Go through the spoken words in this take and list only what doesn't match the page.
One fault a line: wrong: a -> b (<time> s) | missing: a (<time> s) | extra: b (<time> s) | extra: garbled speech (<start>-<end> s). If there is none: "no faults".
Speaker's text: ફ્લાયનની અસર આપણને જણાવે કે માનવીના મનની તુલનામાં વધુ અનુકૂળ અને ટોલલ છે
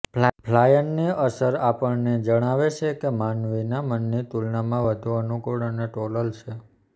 extra: છે (2.8 s)